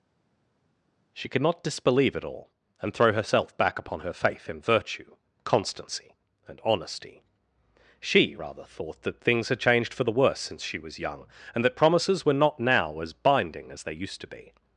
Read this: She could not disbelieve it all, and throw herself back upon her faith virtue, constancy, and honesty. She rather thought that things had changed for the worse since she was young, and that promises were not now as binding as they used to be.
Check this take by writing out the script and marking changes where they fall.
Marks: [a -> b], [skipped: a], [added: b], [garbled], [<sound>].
She could not disbelieve it all, and throw herself back upon her faith [added: in] virtue, constancy, and honesty. She rather thought that things had changed for the worse since she was young, and that promises were not now as binding as they used to be.